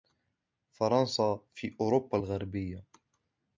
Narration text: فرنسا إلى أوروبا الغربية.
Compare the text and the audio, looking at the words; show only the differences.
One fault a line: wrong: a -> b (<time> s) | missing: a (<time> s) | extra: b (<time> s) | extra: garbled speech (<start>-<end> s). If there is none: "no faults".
wrong: إلى -> في (1.5 s)